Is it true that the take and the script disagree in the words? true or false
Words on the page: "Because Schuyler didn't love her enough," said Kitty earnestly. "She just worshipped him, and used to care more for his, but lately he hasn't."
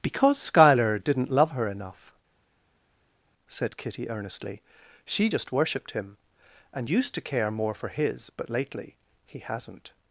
false